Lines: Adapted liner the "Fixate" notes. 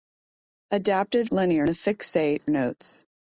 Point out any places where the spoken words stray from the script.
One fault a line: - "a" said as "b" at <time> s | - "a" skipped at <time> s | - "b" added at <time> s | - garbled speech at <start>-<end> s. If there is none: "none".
none